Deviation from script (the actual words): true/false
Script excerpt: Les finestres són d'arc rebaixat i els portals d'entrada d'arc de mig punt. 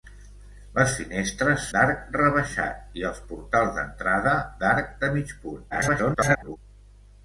true